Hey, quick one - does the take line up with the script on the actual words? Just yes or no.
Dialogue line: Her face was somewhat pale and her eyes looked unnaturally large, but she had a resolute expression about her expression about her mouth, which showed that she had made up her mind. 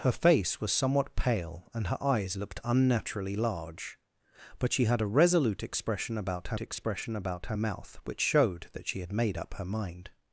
yes